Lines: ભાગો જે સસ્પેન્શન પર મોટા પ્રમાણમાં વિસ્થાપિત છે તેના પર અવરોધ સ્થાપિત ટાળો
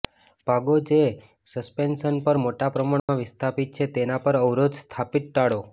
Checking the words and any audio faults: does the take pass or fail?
fail